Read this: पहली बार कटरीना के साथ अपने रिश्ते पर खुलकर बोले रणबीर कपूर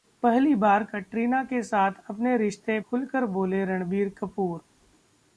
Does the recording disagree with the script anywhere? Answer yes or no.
yes